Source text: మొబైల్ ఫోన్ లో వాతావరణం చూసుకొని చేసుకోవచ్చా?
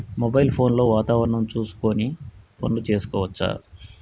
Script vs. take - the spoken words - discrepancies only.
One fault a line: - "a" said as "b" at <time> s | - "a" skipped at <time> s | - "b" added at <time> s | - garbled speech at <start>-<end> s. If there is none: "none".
- "పనులు" added at 2.6 s